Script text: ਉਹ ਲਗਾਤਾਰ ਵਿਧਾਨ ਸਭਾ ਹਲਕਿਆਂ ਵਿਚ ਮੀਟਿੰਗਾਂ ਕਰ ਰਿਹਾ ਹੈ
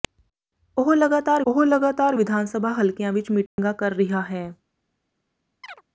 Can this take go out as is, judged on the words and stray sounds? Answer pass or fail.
fail